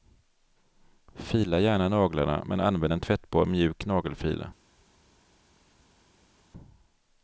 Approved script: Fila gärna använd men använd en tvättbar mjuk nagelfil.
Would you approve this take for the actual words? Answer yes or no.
no